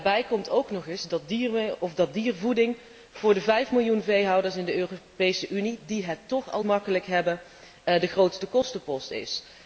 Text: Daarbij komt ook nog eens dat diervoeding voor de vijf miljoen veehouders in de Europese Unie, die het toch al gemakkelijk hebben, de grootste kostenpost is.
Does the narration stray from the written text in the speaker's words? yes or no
no